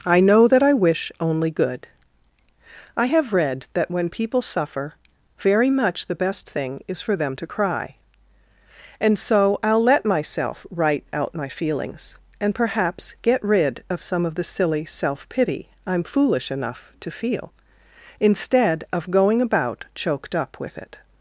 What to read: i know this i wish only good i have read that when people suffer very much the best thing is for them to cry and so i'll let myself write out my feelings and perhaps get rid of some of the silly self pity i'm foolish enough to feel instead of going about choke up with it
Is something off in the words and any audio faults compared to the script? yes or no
yes